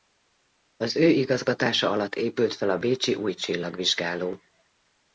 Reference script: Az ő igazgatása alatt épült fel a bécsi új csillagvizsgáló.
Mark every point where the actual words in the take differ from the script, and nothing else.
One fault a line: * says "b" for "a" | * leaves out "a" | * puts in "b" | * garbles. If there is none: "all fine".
all fine